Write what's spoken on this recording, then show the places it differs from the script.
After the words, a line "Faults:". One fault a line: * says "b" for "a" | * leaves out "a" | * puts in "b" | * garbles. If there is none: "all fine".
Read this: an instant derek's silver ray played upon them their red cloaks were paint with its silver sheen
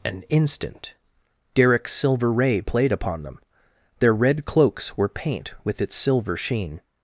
an instant derek's silver ray played upon them their red cloaks were paint with its silver sheen
Faults:
all fine